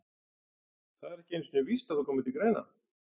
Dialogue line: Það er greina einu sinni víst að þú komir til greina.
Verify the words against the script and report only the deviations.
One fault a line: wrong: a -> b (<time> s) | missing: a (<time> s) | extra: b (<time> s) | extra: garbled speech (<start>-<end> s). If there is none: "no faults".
wrong: greina -> ekki (1.2 s)